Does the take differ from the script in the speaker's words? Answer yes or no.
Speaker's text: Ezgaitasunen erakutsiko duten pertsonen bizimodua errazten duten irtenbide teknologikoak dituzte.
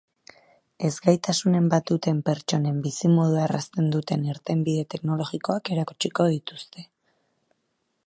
yes